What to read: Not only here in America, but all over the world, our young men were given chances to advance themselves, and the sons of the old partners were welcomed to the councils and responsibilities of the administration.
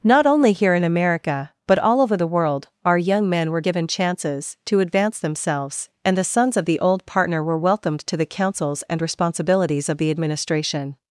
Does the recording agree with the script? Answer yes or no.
no